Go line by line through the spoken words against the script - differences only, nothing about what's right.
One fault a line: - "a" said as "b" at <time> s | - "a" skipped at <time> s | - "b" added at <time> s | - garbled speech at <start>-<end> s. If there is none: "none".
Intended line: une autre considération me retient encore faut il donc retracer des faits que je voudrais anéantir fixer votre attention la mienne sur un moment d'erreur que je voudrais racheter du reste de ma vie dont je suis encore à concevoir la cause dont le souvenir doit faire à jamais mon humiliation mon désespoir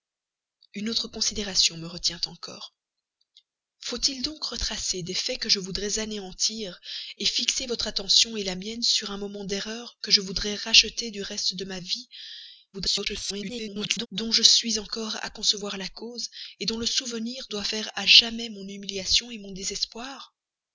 - garbled speech at 12.7-14.1 s